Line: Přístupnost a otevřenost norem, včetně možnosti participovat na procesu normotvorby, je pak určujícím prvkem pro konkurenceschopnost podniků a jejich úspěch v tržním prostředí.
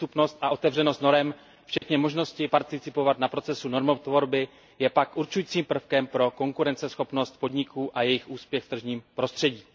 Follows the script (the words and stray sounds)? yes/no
no